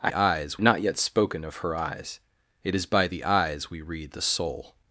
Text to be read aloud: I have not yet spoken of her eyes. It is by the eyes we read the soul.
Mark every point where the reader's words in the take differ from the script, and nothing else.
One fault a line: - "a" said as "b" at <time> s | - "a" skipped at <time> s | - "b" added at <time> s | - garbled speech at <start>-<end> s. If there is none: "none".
- "have" said as "eyes" at 0.1 s